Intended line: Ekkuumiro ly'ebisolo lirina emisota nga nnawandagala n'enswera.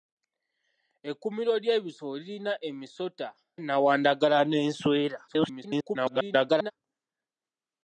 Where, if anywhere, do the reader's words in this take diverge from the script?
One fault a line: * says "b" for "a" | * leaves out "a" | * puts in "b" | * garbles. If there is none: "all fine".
* leaves out "nga"
* garbles